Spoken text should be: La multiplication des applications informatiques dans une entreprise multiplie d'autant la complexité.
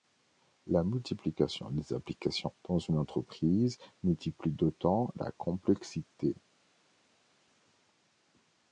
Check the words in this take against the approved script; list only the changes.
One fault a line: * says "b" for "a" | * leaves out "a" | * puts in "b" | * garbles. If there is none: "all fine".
* leaves out "informatiques"